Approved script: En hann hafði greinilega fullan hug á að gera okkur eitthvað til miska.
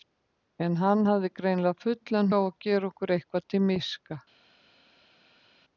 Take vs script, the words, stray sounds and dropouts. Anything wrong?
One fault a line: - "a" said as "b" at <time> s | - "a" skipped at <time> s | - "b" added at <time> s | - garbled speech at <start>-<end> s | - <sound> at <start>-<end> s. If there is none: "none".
- "hug" skipped at 2.3 s